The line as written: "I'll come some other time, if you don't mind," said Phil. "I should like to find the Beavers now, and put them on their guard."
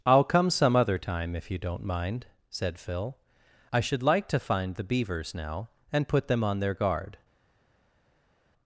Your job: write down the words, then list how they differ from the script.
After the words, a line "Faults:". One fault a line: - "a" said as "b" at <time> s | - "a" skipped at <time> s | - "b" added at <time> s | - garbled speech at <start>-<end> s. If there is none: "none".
"I'll come some other time, if you don't mind," said Phil. "I should like to find the Beavers now, and put them on their guard."
Faults:
none